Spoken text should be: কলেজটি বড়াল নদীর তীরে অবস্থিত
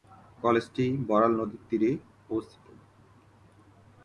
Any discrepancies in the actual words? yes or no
no